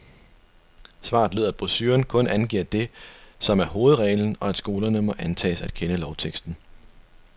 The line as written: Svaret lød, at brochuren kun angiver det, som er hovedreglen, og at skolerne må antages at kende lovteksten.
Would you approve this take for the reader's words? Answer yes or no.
yes